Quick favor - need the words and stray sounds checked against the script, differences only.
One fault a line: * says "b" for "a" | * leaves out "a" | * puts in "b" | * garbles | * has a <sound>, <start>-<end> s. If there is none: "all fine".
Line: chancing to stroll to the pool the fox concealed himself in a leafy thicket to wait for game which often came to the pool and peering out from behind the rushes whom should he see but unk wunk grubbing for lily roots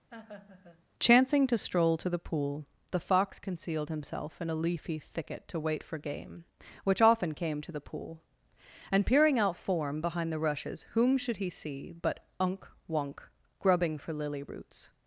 * has a laugh, 0.1-0.9 s
* says "form" for "from"